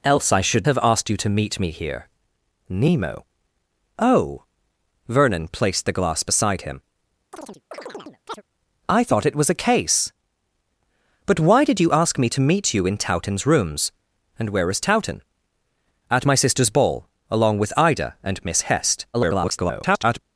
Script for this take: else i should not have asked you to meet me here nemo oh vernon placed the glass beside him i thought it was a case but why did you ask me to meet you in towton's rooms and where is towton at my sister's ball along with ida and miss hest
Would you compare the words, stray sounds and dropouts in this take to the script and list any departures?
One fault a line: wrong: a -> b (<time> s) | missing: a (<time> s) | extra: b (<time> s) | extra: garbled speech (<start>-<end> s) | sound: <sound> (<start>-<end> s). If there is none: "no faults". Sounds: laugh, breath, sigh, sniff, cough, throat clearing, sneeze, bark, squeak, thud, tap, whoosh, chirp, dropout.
missing: not (0.7 s)
sound: chirp (7.3-8.4 s)
extra: garbled speech (19.1-20.2 s)